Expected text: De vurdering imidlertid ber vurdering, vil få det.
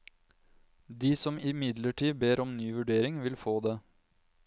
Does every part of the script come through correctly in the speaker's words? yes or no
no